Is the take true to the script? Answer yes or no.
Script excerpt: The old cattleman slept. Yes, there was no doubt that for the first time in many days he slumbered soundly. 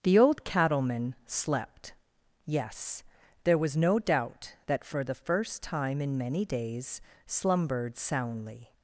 no